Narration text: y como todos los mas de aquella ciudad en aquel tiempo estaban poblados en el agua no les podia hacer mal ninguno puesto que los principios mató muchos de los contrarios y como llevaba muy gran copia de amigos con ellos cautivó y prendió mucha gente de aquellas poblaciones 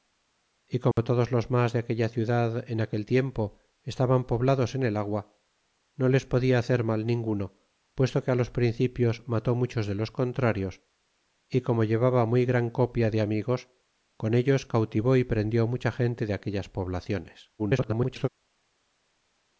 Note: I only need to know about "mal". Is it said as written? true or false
true